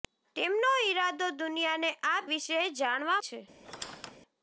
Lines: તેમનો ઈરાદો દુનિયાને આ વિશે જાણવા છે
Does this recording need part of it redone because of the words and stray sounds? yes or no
yes